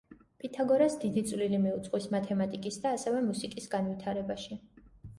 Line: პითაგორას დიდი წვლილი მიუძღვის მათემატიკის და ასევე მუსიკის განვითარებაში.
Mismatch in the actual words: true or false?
false